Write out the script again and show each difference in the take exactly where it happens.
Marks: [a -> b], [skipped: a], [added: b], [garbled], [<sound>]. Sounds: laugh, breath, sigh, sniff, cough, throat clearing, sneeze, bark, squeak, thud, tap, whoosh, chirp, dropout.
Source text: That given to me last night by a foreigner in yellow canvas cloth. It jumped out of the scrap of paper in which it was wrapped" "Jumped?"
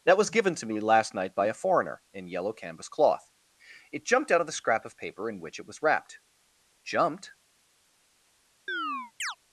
That [added: was] given to me last night by a foreigner in yellow canvas cloth. It jumped out of the scrap of paper in which it was wrapped" "Jumped?" [chirp]